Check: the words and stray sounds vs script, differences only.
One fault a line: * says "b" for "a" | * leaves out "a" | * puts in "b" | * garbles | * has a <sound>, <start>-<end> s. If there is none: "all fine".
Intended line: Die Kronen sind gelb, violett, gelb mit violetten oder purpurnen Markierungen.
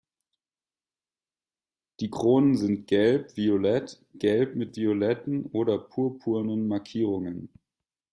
all fine